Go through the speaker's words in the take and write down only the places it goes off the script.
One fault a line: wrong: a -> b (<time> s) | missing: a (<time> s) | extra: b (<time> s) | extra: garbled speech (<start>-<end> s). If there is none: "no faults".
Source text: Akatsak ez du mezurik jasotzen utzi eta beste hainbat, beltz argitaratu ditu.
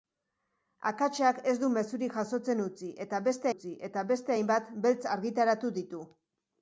extra: utzi eta beste (3.5 s)